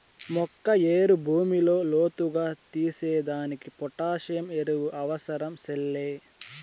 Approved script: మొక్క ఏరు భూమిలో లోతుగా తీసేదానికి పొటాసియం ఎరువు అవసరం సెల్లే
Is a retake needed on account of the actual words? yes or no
no